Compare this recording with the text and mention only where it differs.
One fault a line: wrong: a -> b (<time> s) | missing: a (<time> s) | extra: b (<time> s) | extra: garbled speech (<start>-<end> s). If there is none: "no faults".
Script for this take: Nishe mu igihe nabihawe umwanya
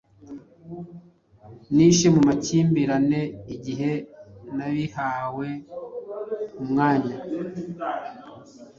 extra: makimbirane (2.3 s)